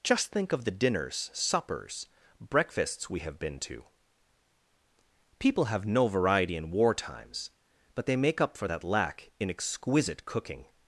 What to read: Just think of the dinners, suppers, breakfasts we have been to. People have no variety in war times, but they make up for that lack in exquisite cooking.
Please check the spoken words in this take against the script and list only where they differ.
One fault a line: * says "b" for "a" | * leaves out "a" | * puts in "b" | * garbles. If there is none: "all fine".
all fine